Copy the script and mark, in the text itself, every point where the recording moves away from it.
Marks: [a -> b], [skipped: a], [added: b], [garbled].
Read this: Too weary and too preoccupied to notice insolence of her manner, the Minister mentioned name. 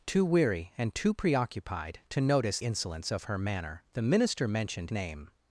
Too weary and too preoccupied to notice insolence of her manner, the Minister mentioned name.